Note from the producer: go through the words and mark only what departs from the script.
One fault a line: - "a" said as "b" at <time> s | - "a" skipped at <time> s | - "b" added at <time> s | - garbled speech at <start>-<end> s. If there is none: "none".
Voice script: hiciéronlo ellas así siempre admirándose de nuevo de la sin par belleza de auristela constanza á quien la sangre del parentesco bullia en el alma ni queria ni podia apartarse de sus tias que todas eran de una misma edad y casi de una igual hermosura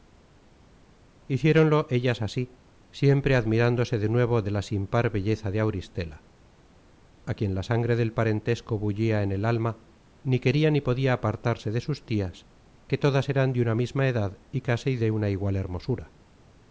- "constanza" skipped at 6.2 s